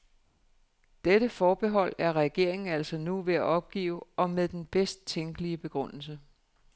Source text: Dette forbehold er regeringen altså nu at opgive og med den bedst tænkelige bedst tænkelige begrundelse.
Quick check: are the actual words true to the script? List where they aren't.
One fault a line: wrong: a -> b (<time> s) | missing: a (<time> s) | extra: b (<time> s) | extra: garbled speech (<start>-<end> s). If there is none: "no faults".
extra: ved (3.2 s)
missing: bedst tænkelige (5.6 s)